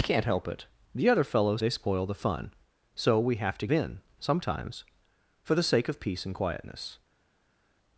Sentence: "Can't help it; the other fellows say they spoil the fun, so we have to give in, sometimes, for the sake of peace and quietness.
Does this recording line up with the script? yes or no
no